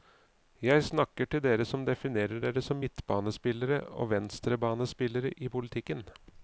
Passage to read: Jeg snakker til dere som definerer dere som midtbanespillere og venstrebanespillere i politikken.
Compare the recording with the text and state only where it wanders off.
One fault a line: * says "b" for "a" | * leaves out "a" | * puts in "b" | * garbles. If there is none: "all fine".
all fine